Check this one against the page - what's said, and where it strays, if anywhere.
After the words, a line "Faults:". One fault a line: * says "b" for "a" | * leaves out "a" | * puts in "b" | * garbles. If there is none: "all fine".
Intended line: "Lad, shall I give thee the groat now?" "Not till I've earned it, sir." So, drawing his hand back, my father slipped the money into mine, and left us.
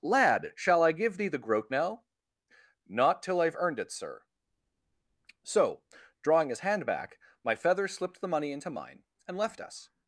"Lad, shall I give thee the groat now?" "Not till I've earned it, sir." So, drawing his hand back, my feather slipped the money into mine, and left us.
Faults:
* says "feather" for "father"